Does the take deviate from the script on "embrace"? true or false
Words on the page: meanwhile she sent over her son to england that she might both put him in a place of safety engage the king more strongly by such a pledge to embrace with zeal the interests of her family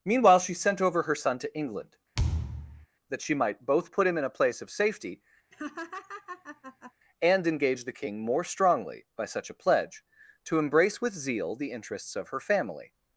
false